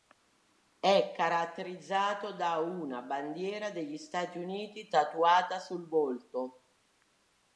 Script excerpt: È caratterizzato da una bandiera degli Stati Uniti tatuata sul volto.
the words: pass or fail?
pass